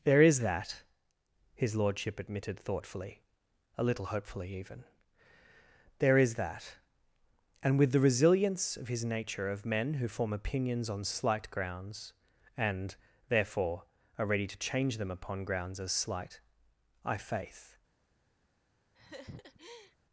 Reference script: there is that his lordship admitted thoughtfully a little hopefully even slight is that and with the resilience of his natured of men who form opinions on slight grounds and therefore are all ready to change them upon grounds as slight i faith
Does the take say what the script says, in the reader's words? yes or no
no